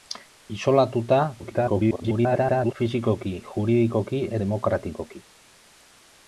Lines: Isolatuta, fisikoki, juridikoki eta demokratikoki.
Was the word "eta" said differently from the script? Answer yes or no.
yes